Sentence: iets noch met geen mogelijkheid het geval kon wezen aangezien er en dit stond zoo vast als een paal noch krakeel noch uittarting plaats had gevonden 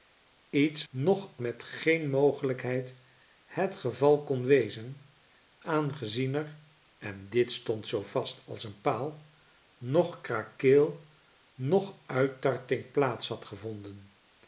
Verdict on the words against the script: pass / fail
pass